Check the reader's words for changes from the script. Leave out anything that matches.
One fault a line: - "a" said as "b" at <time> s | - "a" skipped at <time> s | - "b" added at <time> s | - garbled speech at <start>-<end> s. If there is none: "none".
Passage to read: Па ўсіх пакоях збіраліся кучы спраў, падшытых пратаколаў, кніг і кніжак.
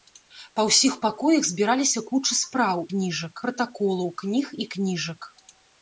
- "падшытых" said as "кніжак" at 2.9 s